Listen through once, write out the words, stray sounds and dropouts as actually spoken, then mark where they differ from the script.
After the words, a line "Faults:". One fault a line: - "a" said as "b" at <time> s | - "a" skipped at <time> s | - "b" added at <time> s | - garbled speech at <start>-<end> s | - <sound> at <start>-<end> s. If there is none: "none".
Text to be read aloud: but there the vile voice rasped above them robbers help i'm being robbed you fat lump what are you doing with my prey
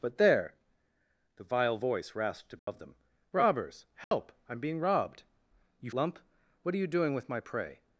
but there the vile voice rasped above them robbers help i'm being robbed you lump what are you doing with my prey
Faults:
- dropout at 2.6-2.7 s
- dropout at 4.0-4.1 s
- "fat" skipped at 5.9 s